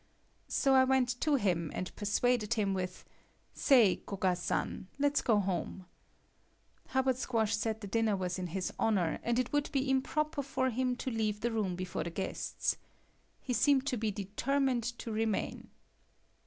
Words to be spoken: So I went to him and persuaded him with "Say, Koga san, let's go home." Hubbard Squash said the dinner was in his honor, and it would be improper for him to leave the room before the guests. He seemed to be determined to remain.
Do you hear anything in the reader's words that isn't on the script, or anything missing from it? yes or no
no